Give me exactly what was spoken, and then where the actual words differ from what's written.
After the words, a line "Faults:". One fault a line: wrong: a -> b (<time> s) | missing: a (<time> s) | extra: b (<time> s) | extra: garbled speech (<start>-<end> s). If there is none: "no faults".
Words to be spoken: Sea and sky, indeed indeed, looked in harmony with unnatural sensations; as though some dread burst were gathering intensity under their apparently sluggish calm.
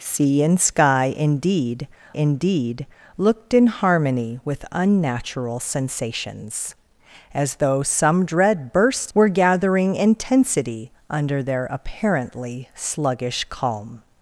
Sea and sky, indeed indeed, looked in harmony with unnatural sensations; as though some dread burst were gathering intensity under their apparently sluggish calm.
Faults:
no faults